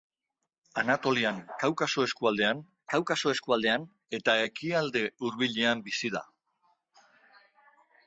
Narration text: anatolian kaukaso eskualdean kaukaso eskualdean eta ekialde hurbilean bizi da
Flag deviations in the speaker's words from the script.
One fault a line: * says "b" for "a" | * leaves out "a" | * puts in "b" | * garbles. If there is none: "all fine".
all fine